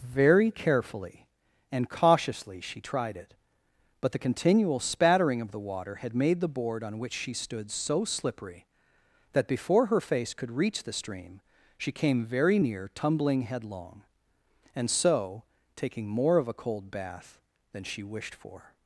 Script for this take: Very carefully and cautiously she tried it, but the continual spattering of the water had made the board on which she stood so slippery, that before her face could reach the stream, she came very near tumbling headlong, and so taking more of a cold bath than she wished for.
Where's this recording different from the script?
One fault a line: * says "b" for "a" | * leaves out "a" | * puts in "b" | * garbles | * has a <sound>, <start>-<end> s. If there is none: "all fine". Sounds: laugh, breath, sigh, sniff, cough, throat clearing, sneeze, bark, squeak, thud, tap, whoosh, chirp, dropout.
all fine